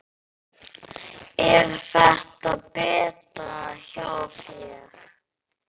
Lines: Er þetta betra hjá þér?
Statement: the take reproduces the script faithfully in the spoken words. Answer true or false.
true